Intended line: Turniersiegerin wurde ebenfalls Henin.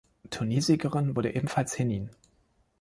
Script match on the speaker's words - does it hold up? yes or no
yes